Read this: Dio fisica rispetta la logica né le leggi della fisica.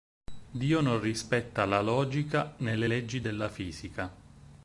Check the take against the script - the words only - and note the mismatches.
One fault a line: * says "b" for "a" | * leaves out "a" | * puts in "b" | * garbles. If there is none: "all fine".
* says "non" for "fisica"